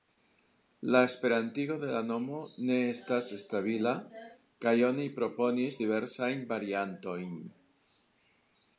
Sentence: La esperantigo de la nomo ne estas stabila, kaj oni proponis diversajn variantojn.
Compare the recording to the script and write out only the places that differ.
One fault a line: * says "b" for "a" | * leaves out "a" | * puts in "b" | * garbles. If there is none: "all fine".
all fine